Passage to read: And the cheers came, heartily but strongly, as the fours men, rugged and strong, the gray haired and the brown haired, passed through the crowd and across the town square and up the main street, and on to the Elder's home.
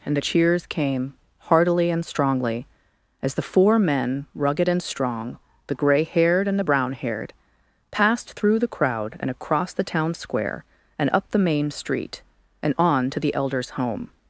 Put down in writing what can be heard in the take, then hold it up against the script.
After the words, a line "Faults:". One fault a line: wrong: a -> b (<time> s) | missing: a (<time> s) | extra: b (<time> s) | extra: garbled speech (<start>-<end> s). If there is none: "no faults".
And the cheers came, heartily and strongly, as the four men, rugged and strong, the gray haired and the brown haired, passed through the crowd and across the town square and up the main street, and on to the Elder's home.
Faults:
wrong: but -> and (1.9 s)
wrong: fours -> four (3.4 s)